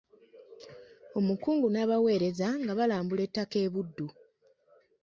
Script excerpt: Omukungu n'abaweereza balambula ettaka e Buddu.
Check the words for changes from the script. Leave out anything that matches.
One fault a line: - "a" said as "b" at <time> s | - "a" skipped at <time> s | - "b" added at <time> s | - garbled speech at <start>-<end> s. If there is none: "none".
- "nga" added at 2.6 s